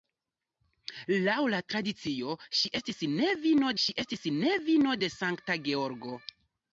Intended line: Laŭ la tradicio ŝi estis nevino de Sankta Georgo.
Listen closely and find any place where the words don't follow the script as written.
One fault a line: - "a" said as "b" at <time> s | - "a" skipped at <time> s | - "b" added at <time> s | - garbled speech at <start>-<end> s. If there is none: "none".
- "ŝi estis nevino" added at 3.8 s